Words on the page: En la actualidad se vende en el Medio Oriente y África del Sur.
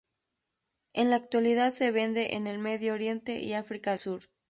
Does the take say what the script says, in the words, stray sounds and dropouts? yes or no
no